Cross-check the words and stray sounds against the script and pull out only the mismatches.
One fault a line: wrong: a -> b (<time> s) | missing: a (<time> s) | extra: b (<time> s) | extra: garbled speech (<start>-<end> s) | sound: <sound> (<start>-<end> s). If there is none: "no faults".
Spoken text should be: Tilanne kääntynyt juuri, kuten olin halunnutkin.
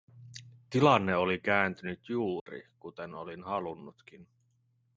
extra: oli (1.1 s)
sound: dropout (2.4-2.5 s)